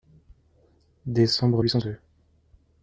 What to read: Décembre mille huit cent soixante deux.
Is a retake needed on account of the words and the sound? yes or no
yes